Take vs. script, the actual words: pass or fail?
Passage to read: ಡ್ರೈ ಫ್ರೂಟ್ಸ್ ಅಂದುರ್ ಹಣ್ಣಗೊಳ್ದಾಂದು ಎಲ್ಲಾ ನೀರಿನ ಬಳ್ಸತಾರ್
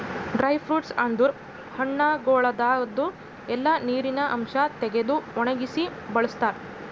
fail